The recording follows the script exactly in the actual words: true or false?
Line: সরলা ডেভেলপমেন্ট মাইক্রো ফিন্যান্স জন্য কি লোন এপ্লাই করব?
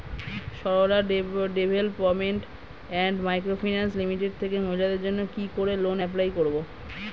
false